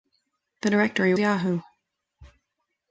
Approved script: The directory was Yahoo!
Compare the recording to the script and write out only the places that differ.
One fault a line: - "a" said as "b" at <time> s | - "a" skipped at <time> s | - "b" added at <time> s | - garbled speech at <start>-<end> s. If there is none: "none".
- "was" skipped at 1.1 s